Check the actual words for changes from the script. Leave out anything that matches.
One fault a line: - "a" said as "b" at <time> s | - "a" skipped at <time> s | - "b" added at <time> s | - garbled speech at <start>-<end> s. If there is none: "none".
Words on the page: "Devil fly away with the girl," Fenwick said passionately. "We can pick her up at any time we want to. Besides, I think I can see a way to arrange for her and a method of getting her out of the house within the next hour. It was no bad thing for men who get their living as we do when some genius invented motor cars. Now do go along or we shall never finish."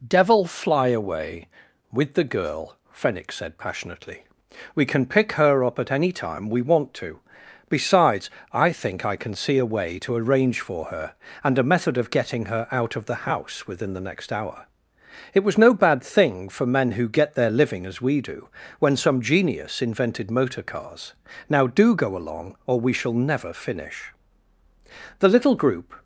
- "The little group" added at 25.2 s